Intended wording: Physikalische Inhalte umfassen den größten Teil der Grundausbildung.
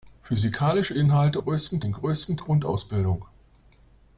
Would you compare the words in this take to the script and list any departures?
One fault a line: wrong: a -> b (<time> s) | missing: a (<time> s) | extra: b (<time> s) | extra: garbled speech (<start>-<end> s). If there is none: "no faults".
wrong: umfassen -> größten (1.4 s)
missing: Teil der (2.4 s)